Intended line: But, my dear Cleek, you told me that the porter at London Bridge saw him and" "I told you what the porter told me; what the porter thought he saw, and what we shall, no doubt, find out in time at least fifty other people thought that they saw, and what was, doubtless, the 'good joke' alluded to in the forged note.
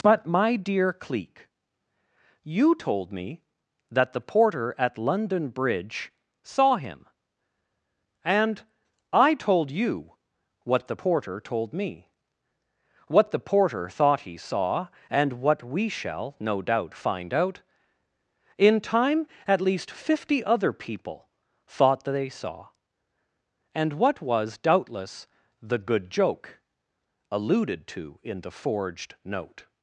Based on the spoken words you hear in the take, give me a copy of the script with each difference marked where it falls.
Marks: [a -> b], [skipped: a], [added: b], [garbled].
But, my dear Cleek, you told me that the porter at London Bridge saw him and" "I told you what the porter told me; what the porter thought he saw, and what we shall, no doubt, find out in time at least fifty other people thought that they saw, and what was, doubtless, the 'good joke' alluded to in the forged note.